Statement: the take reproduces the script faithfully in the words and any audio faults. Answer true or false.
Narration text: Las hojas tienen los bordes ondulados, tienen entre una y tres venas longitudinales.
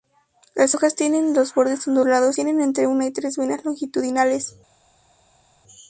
true